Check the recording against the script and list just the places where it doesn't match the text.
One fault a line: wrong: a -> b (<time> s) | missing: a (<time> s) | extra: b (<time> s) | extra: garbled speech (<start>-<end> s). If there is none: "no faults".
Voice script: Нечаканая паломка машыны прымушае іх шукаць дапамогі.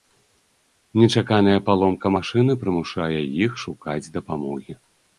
no faults